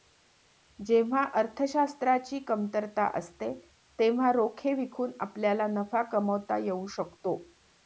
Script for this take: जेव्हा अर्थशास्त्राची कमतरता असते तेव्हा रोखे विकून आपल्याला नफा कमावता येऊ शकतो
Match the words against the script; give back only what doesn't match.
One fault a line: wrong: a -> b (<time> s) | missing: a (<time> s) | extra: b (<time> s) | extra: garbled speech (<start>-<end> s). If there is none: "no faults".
no faults